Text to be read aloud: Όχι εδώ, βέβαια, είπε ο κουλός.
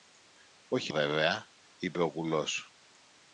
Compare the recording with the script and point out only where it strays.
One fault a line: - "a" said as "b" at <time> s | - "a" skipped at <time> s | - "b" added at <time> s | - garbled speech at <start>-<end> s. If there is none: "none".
- "εδώ" skipped at 0.9 s